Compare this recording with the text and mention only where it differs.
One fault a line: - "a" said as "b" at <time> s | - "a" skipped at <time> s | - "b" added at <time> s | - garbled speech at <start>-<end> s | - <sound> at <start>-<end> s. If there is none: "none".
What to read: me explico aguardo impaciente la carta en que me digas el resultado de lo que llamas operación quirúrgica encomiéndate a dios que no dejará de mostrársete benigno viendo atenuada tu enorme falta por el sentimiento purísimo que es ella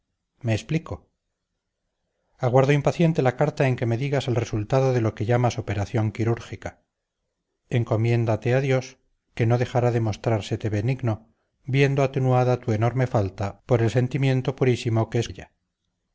none